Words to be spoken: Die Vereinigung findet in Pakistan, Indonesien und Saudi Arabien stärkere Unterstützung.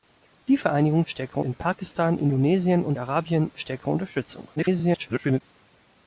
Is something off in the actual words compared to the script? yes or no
yes